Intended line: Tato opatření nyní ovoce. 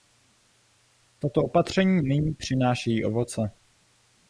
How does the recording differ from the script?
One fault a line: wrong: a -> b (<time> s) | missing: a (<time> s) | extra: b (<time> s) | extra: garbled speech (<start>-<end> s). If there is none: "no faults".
extra: přinášejí (2.3 s)